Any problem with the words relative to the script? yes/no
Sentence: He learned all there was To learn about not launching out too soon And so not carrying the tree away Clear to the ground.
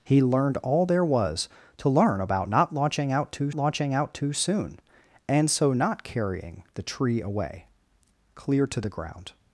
yes